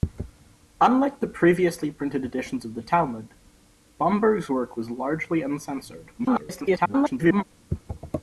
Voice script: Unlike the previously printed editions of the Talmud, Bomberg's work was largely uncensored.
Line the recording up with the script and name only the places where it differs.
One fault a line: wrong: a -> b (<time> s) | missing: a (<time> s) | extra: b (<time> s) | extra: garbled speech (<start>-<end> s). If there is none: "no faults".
extra: garbled speech (6.2-7.4 s)